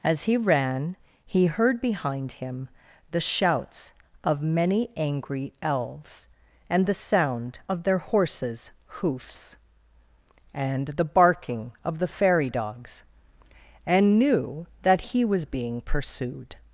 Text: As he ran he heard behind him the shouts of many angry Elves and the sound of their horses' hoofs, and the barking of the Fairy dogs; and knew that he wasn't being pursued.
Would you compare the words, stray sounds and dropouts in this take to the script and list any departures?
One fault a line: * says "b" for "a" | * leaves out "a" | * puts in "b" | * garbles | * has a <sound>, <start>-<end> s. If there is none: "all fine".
* says "was" for "wasn't"